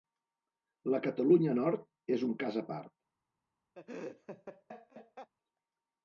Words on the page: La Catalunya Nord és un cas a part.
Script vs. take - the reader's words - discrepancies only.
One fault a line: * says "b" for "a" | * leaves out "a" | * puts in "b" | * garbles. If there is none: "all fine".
all fine